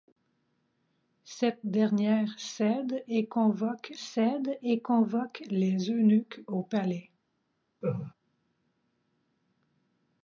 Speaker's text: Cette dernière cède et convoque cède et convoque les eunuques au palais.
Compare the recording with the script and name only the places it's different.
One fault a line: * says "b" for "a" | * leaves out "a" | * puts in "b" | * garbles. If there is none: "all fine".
all fine